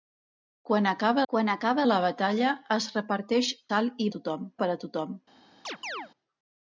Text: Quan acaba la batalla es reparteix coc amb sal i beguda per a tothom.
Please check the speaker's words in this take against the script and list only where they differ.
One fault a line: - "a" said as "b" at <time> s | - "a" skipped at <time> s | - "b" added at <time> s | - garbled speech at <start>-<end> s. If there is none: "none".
- "quan acaba" added at 1.3 s
- "coc amb" skipped at 3.5 s
- "beguda" said as "tothom" at 4.2 s